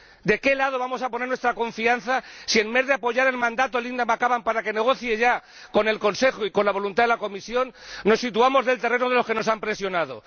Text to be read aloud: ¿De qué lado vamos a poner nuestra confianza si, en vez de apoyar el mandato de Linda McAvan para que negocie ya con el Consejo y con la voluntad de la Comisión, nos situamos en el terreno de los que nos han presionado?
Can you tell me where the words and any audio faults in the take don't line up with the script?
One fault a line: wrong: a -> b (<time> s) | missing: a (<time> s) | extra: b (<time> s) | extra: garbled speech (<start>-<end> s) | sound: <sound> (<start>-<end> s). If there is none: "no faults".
no faults